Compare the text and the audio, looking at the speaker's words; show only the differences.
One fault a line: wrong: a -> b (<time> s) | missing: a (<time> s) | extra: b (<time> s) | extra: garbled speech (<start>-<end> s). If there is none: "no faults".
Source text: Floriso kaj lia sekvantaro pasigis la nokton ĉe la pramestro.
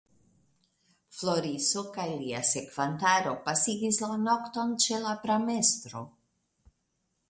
no faults